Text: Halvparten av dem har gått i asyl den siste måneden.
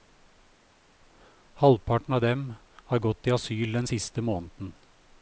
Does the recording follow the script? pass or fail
pass